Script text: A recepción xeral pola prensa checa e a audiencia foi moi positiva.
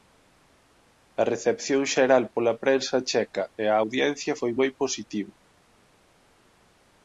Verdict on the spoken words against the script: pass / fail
pass